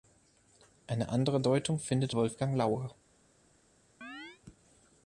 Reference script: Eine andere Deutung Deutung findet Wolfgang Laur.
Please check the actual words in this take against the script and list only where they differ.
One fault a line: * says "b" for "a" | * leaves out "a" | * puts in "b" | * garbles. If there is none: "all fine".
* leaves out "Deutung"